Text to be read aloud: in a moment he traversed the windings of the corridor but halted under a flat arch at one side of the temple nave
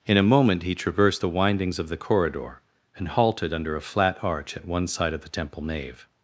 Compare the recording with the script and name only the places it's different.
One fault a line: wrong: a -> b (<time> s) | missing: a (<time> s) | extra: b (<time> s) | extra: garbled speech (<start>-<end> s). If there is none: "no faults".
wrong: but -> and (3.0 s)